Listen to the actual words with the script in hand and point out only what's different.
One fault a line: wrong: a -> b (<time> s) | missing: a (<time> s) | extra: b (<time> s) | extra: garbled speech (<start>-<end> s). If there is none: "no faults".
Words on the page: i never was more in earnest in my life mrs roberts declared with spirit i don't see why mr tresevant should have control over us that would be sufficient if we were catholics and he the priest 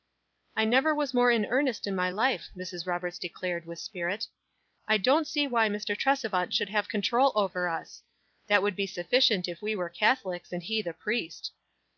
no faults